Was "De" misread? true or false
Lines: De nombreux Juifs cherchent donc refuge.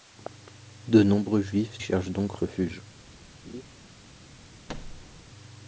false